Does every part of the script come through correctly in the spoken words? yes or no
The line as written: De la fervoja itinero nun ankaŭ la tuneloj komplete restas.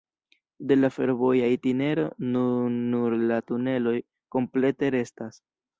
no